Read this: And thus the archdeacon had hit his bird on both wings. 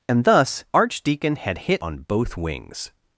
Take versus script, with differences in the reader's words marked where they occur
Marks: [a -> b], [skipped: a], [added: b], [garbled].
And thus [skipped: the] archdeacon had hit [skipped: his bird] on both wings.